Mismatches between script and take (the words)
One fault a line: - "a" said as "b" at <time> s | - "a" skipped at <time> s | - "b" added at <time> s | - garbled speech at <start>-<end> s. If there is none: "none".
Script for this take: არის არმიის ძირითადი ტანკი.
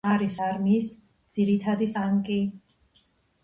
none